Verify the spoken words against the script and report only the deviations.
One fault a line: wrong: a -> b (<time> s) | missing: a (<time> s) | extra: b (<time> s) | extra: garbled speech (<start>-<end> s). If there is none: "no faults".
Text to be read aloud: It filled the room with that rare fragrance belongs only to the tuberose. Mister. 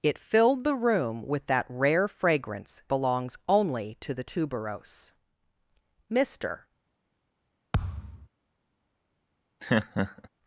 no faults